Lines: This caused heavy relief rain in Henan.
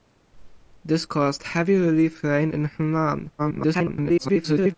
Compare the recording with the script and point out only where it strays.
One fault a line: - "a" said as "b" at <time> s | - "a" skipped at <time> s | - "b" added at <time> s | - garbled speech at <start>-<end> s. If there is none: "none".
- garbled speech at 3.4-4.7 s